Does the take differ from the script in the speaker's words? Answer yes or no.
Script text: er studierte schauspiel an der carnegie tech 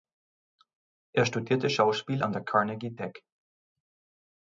no